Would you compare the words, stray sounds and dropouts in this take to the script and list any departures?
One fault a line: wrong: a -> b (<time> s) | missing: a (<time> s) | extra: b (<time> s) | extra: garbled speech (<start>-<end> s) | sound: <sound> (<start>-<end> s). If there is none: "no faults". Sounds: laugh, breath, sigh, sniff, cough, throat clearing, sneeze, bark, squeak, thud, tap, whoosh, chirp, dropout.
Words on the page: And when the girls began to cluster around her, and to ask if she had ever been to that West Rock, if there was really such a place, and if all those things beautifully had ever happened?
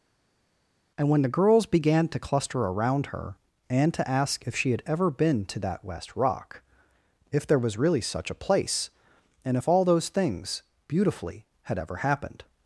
no faults